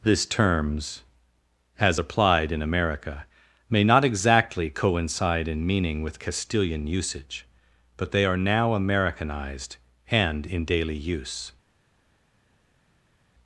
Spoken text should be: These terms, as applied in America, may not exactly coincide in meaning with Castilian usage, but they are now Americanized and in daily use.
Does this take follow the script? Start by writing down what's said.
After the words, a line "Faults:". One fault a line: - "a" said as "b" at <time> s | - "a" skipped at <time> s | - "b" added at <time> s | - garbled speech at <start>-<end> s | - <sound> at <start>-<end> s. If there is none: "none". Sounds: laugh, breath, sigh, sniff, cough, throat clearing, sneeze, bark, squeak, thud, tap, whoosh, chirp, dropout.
This terms, as applied in America, may not exactly coincide in meaning with Castilian usage, but they are now Americanized and in daily use.
Faults:
- "These" said as "This" at 0.0 s